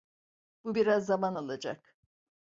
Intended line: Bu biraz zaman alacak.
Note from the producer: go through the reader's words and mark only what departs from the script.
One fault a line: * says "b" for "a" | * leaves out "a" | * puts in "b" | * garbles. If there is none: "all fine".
all fine